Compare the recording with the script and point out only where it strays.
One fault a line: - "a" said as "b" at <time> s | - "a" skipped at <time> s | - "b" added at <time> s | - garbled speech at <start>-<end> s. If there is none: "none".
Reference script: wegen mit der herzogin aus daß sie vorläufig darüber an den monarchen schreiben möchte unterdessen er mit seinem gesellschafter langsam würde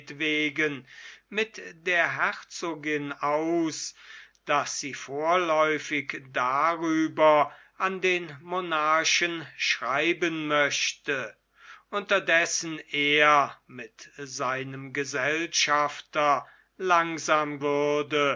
none